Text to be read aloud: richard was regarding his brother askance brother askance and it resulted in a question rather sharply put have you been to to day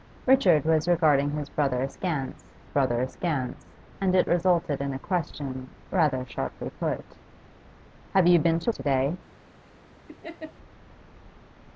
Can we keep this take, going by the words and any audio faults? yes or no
no